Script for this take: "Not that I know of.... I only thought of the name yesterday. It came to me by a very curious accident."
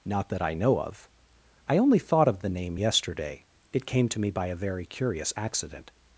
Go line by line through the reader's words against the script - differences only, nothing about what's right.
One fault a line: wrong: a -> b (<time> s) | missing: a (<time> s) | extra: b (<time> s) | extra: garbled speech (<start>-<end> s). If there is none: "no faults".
no faults